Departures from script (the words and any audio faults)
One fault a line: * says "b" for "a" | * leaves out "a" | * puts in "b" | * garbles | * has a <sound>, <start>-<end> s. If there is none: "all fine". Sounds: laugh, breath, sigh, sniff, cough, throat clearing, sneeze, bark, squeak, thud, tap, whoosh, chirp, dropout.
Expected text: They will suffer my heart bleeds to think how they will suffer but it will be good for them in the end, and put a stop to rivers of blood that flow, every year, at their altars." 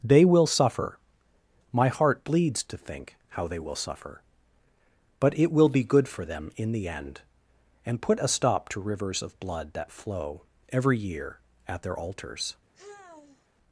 * has a sigh, 12.7-13.5 s